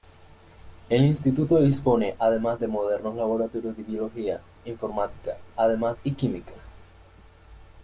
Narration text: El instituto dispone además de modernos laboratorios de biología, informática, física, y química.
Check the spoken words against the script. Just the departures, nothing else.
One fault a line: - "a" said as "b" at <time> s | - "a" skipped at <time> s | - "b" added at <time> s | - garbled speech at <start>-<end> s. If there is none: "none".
- "física" said as "además" at 5.5 s